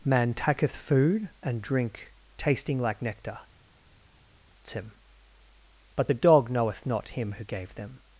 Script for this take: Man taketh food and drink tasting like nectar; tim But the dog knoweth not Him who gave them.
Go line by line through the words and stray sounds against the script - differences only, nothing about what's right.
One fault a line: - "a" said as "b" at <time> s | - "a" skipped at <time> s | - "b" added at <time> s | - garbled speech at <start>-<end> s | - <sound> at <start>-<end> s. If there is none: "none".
none